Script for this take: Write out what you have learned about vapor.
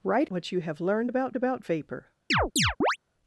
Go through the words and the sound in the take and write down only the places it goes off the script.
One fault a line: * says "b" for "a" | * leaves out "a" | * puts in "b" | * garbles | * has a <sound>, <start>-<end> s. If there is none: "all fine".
* leaves out "out"
* puts in "about"
* has a chirp, 2.3-3.0 s